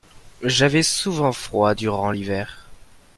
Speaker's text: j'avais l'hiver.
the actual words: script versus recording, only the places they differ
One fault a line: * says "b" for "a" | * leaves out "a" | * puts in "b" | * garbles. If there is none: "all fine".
* puts in "souvent froid durant"